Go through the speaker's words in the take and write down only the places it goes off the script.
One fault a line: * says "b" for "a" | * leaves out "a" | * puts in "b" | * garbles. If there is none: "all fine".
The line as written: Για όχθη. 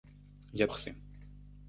all fine